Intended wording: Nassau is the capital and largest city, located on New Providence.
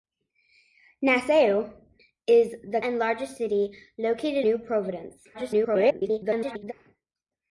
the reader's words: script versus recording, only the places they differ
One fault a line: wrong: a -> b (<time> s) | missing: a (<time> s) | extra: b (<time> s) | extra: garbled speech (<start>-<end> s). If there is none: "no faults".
missing: capital (2.8 s)
missing: on (4.5 s)
extra: garbled speech (5.3-6.7 s)